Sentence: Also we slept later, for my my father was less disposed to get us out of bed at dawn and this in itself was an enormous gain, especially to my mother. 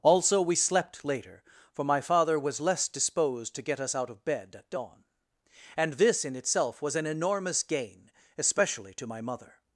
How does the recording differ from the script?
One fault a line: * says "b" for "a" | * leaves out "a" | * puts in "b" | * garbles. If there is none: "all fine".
* leaves out "my"